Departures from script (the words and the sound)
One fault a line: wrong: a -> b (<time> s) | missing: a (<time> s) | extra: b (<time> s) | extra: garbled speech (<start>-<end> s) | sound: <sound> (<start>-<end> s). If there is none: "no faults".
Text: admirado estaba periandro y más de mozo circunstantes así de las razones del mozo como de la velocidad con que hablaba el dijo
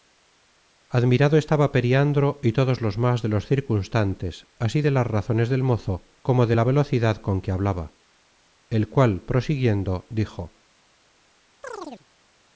extra: todos los (2.5 s)
wrong: mozo -> los (3.3 s)
extra: cual prosiguiendo (8.9 s)
sound: chirp (11.6-12.1 s)